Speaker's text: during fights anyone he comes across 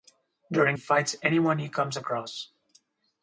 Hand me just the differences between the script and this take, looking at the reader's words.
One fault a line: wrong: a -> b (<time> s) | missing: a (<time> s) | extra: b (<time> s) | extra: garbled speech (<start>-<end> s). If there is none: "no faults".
no faults